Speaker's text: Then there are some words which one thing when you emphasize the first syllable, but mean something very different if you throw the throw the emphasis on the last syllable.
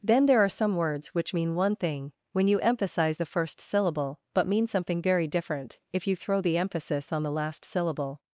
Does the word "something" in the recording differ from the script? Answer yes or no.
no